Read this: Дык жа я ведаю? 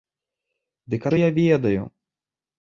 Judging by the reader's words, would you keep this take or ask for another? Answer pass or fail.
pass